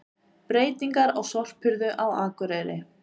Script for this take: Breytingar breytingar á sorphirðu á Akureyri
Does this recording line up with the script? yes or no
no